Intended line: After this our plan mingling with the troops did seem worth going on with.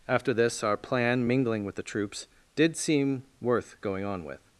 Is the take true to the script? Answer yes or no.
yes